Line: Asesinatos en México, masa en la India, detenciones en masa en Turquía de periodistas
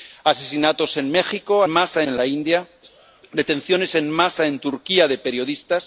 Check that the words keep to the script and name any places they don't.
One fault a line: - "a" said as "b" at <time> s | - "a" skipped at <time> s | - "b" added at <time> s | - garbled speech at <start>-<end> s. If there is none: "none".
none